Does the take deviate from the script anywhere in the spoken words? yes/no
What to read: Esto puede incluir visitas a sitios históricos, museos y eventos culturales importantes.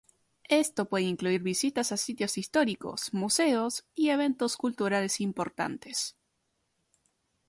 no